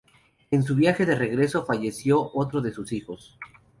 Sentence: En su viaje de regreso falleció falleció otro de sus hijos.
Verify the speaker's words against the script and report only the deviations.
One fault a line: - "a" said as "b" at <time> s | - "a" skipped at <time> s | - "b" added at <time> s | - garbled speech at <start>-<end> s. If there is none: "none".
- "falleció" skipped at 2.3 s